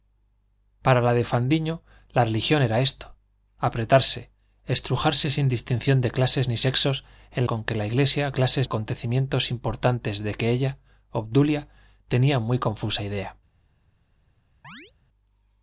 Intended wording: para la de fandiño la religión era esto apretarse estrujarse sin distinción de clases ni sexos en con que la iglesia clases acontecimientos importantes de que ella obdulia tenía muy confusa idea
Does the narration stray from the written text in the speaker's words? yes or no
no